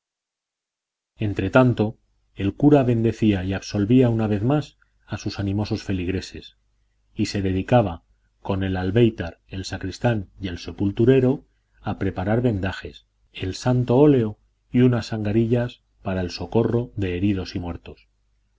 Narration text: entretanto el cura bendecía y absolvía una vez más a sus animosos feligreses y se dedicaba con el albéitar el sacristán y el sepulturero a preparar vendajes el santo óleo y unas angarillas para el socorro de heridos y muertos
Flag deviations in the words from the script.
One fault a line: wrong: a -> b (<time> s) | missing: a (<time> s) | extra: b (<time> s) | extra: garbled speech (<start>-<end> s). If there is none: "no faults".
no faults